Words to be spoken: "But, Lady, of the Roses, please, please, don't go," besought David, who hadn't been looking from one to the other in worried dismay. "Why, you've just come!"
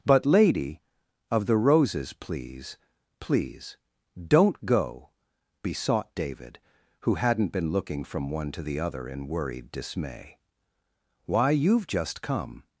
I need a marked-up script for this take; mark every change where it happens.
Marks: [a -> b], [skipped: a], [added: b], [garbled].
"But, Lady, of the Roses, please, please, don't go," besought David, who hadn't been looking from one to the other in worried dismay. "Why, you've just come!"